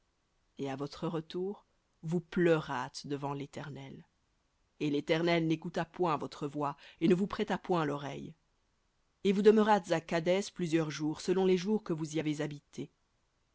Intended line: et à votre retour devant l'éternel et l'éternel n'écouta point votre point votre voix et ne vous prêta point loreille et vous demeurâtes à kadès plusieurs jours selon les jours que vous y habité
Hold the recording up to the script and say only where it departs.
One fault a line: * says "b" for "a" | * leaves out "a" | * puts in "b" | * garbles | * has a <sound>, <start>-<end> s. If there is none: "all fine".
* puts in "vous pleurâtes"
* leaves out "point votre"
* puts in "avez"